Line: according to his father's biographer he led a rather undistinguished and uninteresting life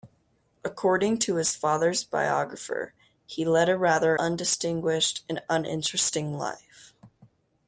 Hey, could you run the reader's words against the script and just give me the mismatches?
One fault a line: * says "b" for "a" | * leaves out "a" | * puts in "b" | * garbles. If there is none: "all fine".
all fine